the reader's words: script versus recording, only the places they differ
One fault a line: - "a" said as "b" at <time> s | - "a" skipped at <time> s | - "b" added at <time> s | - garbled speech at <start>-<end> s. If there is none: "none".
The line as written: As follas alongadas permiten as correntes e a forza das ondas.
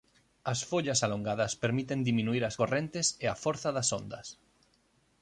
- "diminuír" added at 2.1 s